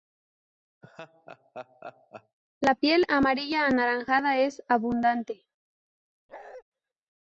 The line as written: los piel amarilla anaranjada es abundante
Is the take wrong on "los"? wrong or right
wrong